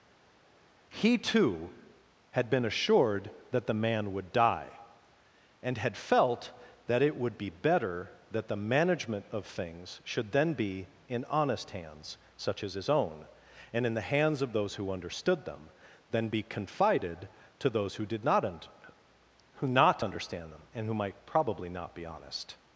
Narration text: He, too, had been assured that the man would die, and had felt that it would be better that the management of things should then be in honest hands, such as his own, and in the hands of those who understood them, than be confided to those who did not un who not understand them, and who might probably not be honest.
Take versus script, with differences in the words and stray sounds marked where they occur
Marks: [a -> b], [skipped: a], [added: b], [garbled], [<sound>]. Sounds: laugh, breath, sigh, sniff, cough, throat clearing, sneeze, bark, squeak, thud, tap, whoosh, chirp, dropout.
He, too, had been assured that the man would die, and had felt that it would be better that the management of things should then be in honest hands, such as his own, and in the hands of those who understood them, than be confided to those who did not un who not understand them, and who might probably not be honest.